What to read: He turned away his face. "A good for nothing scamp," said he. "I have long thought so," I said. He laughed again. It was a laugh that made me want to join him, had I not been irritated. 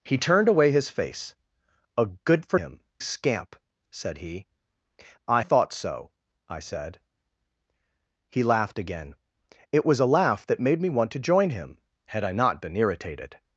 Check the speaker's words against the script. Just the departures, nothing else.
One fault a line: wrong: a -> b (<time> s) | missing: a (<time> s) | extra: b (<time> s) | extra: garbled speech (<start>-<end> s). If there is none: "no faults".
wrong: nothing -> him (2.5 s)
missing: have long (5.4 s)